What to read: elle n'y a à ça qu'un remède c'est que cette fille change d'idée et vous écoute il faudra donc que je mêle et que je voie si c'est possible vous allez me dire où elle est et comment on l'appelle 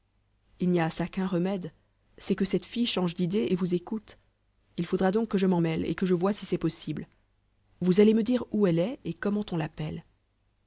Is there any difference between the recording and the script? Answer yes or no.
yes